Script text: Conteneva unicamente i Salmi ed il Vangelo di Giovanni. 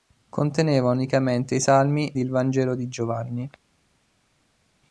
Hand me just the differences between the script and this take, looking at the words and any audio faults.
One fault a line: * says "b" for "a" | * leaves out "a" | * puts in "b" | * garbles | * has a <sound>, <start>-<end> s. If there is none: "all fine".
* leaves out "ed"